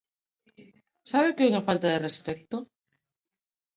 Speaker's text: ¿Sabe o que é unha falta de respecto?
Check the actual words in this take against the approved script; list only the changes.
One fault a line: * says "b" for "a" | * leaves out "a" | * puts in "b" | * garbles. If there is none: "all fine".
all fine